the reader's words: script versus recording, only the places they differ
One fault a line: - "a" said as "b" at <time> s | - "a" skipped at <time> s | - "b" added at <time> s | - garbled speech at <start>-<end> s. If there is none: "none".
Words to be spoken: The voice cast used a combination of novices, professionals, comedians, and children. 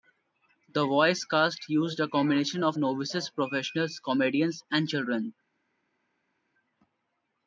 none